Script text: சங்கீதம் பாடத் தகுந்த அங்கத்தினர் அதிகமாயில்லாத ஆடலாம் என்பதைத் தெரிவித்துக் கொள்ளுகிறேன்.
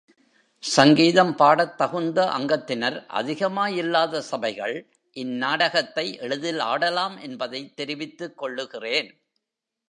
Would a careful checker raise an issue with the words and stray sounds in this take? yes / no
yes